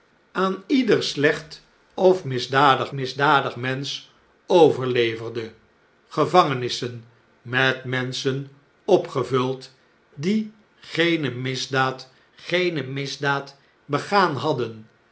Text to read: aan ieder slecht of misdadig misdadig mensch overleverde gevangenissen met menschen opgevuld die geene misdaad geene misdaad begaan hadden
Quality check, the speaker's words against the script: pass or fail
pass